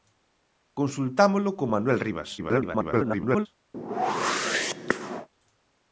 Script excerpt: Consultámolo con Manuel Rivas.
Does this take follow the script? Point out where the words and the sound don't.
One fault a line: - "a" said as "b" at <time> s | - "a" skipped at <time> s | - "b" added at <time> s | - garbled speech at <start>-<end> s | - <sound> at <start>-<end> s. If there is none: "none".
- garbled speech at 2.4-3.5 s
- whoosh at 3.7-5.3 s